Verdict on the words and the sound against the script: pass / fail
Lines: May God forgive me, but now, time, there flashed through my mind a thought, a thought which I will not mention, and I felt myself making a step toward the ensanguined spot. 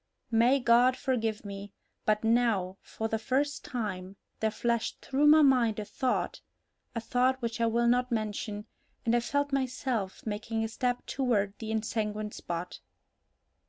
fail